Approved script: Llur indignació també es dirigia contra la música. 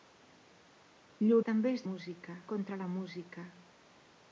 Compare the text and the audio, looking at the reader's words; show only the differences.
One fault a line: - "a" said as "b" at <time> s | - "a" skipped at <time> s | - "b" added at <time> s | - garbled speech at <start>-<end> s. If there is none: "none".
- "indignació" skipped at 1.4 s
- "dirigia" said as "música" at 1.9 s